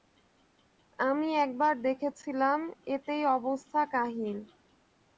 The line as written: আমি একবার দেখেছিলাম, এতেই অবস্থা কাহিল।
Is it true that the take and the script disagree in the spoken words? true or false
false